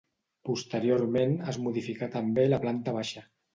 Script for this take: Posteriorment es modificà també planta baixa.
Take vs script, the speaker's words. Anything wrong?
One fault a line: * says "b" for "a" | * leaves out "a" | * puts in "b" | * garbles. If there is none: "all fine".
* puts in "la"